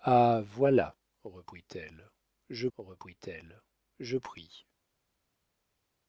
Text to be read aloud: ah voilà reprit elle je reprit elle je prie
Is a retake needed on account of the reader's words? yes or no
no